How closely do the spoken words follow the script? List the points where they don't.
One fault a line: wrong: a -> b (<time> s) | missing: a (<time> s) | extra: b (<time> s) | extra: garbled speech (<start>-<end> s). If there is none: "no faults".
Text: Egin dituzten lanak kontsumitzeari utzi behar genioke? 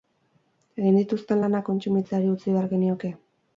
no faults